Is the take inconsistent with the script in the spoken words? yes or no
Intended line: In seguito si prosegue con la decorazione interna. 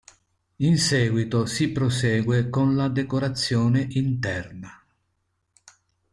no